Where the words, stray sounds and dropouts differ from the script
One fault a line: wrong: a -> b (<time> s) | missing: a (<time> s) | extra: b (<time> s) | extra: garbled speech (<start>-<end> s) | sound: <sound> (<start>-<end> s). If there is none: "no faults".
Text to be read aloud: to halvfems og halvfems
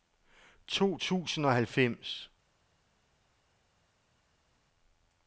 wrong: halvfems -> tusind (1.0 s)